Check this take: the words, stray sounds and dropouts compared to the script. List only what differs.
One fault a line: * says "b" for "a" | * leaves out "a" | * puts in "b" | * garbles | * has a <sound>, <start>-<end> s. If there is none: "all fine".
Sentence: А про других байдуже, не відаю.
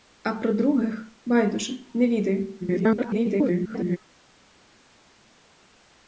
* garbles